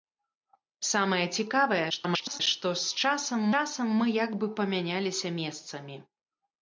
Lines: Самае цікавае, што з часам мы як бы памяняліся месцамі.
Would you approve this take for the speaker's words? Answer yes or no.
no